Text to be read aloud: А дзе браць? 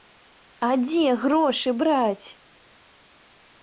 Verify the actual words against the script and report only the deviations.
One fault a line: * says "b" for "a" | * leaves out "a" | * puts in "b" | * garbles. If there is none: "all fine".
* puts in "грошы"